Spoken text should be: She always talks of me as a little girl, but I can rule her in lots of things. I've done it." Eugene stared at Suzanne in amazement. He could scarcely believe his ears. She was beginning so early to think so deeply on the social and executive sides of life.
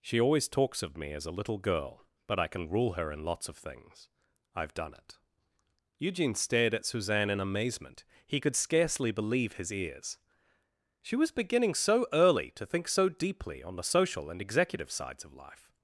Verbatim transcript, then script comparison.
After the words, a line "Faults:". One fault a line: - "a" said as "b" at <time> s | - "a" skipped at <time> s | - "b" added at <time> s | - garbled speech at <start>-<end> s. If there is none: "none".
She always talks of me as a little girl, but I can rule her in lots of things. I've done it." Eugene stared at Suzanne in amazement. He could scarcely believe his ears. She was beginning so early to think so deeply on the social and executive sides of life.
Faults:
none